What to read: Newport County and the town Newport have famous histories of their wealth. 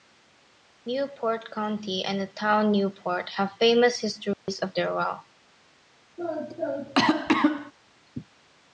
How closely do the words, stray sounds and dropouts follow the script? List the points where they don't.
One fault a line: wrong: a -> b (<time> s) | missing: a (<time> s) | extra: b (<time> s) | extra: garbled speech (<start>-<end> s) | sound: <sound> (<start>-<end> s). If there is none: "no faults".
sound: dropout (4.3-4.5 s)
sound: cough (6.2-7.7 s)